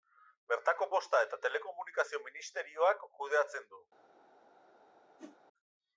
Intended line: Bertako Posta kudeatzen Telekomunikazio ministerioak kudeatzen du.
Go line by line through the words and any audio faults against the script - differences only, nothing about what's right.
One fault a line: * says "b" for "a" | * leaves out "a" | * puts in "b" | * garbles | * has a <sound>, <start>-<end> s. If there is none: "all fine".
* says "eta" for "kudeatzen"
* has a whoosh, 5.2-5.4 s